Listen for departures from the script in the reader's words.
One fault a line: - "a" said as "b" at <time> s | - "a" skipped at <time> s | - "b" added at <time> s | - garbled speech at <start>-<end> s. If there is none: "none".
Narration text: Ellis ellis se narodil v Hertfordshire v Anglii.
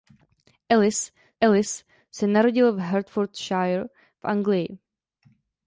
none